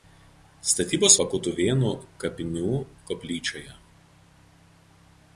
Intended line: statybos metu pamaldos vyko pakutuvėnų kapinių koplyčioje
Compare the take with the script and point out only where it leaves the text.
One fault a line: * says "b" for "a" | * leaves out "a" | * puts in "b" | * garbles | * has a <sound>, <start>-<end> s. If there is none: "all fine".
* leaves out "metu pamaldos vyko"